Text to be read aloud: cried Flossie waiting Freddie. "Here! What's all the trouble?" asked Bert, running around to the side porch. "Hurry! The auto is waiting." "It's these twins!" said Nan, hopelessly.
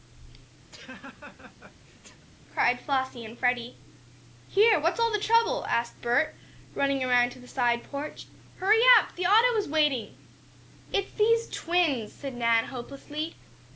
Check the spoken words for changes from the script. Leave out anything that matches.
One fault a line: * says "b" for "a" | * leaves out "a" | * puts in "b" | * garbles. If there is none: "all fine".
* says "and" for "waiting"
* puts in "up"